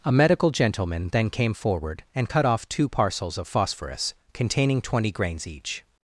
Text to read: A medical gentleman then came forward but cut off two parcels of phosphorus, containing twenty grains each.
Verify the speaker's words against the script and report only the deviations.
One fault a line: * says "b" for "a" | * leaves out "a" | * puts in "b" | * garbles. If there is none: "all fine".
* says "and" for "but"